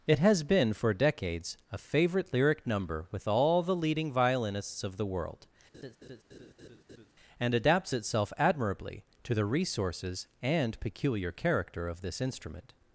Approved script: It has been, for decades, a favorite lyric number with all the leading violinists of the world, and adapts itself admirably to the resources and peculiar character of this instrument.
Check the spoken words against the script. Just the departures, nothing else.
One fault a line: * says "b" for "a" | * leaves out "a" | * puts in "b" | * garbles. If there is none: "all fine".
all fine